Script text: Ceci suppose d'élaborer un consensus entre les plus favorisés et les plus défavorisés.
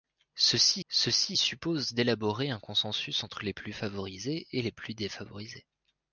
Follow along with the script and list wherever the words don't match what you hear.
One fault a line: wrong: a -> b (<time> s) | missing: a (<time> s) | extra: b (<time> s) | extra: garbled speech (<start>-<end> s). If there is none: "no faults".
extra: ceci (0.9 s)